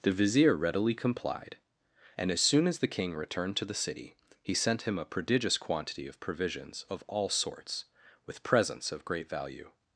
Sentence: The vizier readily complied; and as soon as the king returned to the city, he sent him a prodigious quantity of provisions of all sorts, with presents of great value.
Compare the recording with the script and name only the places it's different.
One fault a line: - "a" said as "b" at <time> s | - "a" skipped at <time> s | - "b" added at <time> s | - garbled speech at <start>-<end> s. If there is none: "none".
none